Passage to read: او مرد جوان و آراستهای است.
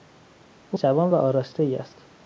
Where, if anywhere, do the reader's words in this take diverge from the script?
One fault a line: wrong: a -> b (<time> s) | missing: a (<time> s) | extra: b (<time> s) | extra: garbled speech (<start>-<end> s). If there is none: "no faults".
missing: مرد (0.8 s)